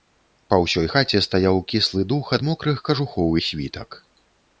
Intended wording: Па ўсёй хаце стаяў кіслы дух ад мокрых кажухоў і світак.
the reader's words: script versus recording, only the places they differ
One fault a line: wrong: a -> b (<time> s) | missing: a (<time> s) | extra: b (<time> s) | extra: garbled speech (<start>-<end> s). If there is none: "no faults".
no faults